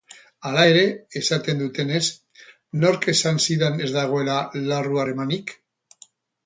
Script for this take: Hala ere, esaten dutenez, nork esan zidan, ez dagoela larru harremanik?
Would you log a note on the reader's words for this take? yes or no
no